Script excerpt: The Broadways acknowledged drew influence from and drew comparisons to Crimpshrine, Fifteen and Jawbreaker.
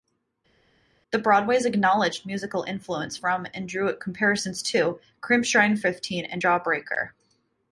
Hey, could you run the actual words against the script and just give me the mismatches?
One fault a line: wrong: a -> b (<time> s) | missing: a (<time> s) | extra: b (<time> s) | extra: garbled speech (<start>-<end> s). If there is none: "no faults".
wrong: drew -> musical (2.3 s)